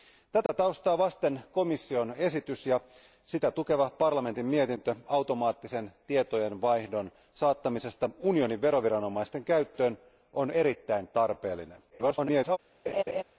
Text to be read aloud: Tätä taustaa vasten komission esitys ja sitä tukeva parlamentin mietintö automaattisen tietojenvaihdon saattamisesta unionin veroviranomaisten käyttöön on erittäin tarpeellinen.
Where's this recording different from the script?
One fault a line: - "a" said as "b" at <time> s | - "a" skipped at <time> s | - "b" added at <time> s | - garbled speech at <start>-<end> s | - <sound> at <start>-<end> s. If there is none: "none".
- dropout at 0.5-0.5 s
- garbled speech at 11.9-12.6 s
- laugh at 12.9-13.2 s